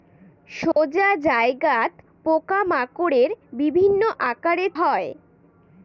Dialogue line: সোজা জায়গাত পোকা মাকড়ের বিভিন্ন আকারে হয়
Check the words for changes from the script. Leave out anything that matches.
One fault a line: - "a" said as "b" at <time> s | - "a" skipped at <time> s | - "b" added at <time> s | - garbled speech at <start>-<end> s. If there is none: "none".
none